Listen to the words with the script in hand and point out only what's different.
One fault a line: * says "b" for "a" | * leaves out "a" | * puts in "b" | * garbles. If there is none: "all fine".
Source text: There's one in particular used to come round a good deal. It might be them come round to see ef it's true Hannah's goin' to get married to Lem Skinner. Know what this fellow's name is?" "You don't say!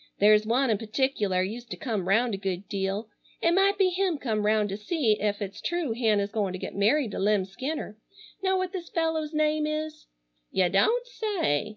* says "him" for "them"